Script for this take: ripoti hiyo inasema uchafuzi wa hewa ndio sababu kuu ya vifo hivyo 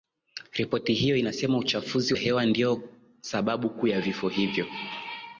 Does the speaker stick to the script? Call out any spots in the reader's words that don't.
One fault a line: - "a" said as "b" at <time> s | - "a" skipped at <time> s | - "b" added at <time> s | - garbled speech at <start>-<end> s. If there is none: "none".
- "wa" skipped at 2.1 s